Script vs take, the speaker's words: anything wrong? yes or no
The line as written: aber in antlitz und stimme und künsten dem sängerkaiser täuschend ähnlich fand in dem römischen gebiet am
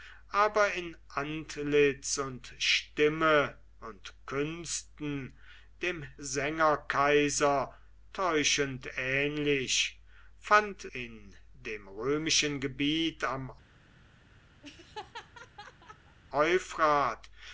no